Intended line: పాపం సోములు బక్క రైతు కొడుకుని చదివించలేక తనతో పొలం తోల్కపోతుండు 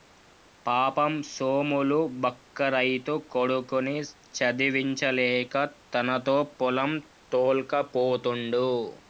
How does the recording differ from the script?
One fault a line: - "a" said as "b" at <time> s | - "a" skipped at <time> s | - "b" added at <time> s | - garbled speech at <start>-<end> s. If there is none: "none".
none